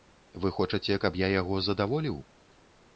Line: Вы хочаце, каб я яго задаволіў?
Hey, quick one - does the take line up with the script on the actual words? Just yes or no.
yes